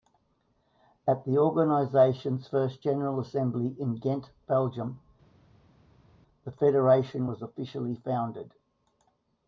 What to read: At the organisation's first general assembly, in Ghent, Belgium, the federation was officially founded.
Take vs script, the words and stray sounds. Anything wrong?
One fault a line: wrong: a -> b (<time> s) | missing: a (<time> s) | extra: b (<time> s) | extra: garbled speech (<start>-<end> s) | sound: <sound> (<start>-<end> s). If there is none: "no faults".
no faults